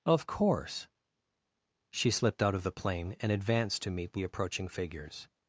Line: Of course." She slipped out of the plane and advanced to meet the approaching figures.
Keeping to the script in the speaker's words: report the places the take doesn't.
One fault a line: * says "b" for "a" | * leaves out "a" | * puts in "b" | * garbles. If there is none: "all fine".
all fine